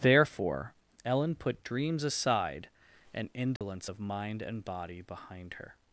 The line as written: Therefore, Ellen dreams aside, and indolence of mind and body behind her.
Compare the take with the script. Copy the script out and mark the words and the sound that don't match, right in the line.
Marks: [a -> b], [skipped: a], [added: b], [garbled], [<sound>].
Therefore, Ellen [added: put] dreams aside, and indolence [dropout] of mind and body behind her.